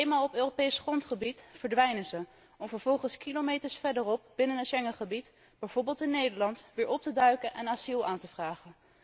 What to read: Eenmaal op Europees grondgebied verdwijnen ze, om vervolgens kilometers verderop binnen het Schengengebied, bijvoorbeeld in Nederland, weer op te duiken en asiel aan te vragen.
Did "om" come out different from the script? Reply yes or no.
no